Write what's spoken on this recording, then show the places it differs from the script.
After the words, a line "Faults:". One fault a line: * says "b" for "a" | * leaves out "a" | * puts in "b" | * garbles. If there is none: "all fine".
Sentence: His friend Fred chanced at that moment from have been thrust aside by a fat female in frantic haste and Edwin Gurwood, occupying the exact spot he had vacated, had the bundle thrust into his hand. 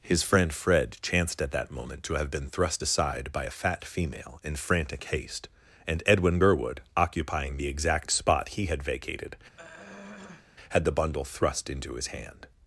His friend Fred chanced at that moment to have been thrust aside by a fat female in frantic haste and Edwin Gurwood, occupying the exact spot he had vacated, had the bundle thrust into his hand.
Faults:
* says "to" for "from"